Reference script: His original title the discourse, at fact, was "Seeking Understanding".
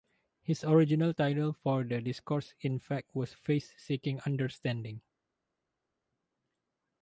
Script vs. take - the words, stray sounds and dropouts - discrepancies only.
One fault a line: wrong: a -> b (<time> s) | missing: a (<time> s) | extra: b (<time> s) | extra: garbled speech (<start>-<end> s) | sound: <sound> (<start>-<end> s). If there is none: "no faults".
extra: for (1.5 s)
wrong: at -> in (2.6 s)
extra: Faith (3.3 s)